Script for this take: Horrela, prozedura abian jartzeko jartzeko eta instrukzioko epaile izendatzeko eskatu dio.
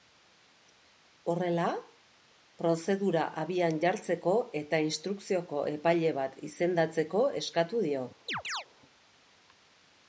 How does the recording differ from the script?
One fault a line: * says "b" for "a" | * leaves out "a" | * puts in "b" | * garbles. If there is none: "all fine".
* leaves out "jartzeko"
* puts in "bat"